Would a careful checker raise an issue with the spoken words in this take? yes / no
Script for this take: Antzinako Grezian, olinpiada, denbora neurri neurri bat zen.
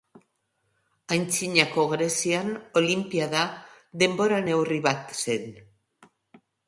yes